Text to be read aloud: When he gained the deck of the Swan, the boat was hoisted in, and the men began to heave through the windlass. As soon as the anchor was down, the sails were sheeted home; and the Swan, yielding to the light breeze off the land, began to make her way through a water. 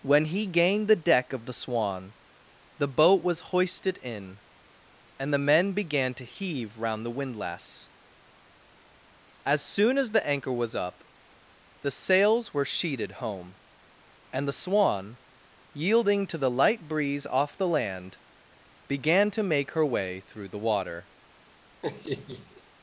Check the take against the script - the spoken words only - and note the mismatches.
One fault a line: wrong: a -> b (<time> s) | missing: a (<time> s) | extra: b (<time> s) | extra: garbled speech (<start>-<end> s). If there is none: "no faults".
wrong: through -> round (6.8 s)
wrong: down -> up (10.8 s)
wrong: a -> the (20.5 s)